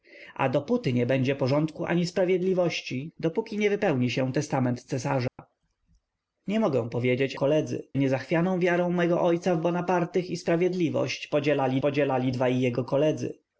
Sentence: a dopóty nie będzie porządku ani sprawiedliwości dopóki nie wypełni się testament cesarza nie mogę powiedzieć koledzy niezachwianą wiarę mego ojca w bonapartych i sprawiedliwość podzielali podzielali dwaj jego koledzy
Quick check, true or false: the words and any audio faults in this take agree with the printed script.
false